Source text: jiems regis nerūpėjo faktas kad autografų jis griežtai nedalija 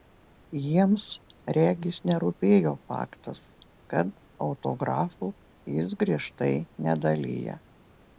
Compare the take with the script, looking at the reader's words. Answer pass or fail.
pass